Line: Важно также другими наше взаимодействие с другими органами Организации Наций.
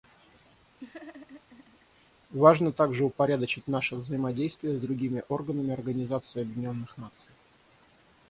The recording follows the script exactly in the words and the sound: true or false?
false